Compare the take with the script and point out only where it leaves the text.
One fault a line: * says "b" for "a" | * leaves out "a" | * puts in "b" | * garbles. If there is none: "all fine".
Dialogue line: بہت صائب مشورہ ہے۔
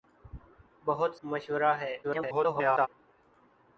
* leaves out "صائب"
* garbles